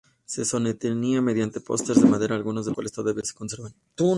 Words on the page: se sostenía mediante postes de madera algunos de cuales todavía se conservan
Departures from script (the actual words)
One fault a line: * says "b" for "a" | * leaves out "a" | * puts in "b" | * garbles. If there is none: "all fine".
all fine